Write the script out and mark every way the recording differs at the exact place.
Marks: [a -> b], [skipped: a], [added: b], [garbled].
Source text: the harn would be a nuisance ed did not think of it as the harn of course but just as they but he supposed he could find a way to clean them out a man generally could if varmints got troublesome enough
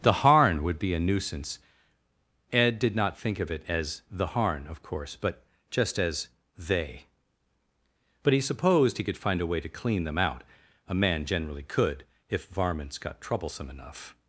the harn would be a nuisance ed did not think of it as the harn of course but just as they but he supposed he could find a way to clean them out a man generally could if varmints got troublesome enough